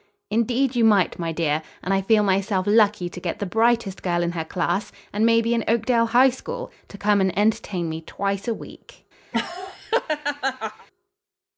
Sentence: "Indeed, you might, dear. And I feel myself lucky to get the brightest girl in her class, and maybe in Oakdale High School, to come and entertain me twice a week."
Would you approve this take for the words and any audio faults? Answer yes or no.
no